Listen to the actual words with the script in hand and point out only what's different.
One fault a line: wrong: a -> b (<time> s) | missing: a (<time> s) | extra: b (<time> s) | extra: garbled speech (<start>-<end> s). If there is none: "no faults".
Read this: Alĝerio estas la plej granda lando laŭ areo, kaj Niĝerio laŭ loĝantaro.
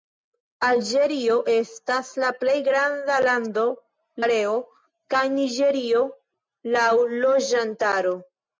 missing: laŭ (3.7 s)